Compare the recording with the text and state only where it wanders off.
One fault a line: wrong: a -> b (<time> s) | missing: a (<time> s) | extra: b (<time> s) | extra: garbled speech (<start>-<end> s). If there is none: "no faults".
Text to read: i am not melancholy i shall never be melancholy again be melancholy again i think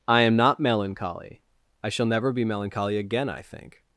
missing: be melancholy again (3.3 s)